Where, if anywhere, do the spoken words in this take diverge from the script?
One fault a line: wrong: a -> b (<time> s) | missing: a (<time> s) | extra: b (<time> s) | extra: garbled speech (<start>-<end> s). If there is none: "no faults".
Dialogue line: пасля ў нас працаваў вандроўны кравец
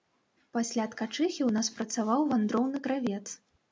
extra: ткачыхі (0.9 s)